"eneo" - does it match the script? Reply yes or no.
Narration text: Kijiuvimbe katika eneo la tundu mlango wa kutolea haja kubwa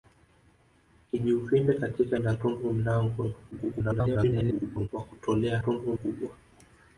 no